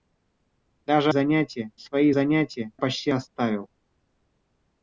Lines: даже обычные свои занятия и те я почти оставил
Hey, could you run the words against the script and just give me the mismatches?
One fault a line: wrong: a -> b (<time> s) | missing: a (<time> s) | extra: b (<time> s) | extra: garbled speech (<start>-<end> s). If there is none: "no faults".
wrong: обычные -> занятия (1.1 s)
missing: и те я (2.7 s)